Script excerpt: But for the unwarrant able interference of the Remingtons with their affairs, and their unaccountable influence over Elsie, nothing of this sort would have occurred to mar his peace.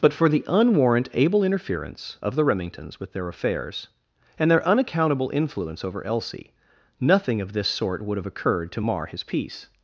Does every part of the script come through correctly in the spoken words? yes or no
yes